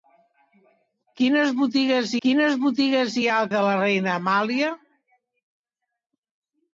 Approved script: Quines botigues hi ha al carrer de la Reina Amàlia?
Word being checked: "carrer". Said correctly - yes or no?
no